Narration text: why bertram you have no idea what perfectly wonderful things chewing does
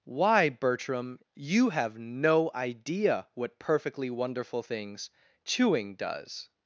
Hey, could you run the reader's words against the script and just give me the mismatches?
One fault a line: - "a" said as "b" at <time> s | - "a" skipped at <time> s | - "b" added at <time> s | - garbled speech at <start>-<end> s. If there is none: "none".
none